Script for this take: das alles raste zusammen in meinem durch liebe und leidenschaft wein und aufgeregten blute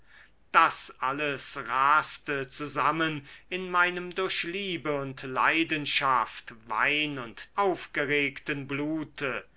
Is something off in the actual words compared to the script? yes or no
no